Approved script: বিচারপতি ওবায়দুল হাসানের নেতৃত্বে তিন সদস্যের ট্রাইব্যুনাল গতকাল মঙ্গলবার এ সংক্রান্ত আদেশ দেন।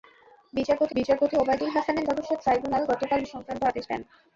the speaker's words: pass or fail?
fail